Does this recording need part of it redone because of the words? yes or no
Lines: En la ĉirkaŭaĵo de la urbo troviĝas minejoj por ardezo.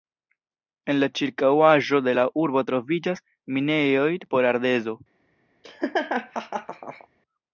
no